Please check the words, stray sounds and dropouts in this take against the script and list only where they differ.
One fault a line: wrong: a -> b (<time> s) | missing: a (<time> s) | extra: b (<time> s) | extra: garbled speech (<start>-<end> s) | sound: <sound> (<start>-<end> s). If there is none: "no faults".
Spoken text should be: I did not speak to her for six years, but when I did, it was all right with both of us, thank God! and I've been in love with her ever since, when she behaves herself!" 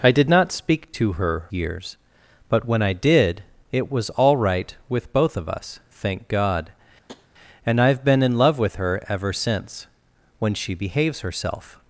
missing: for six (1.4 s)
sound: tap (7.1-7.3 s)